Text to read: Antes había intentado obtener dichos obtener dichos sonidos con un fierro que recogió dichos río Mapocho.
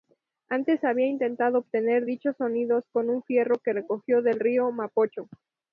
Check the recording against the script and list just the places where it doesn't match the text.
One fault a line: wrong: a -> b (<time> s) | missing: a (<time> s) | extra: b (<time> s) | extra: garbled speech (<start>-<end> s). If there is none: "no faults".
missing: obtener dichos (2.4 s)
wrong: dichos -> del (4.2 s)